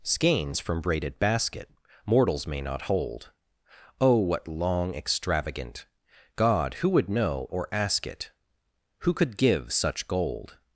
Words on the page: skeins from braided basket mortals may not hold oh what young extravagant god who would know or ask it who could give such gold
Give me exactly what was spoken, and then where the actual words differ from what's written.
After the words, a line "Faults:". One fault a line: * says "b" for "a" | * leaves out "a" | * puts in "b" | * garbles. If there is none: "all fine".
skeins from braided basket mortals may not hold oh what long extravagant god who would know or ask it who could give such gold
Faults:
* says "long" for "young"